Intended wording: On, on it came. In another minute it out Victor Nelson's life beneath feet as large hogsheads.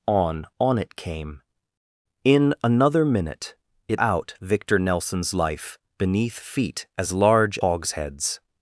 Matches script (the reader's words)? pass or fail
pass